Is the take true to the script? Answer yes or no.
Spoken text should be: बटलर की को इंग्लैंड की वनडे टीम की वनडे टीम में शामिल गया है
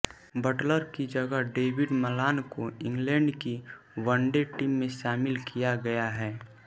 no